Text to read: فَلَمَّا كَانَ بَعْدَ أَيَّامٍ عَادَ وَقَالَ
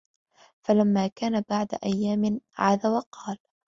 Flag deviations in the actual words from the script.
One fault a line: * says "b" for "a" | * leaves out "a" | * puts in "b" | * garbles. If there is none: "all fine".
all fine